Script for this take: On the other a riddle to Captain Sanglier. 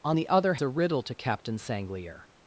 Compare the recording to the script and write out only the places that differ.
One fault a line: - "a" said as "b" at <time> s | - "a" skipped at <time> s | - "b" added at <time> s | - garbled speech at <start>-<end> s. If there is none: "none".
none